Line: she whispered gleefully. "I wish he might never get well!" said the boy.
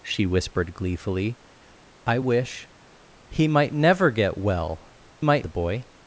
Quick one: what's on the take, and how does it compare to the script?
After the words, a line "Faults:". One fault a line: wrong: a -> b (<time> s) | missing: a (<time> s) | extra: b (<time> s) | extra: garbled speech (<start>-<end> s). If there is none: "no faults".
she whispered gleefully. "I wish he might never get well!" might the boy.
Faults:
wrong: said -> might (5.2 s)